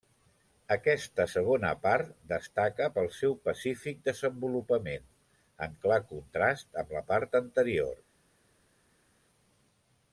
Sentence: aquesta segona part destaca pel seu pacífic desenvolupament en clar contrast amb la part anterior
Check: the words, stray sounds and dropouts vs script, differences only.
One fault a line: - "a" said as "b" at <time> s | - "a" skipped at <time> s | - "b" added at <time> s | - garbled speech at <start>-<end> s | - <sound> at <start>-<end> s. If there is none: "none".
none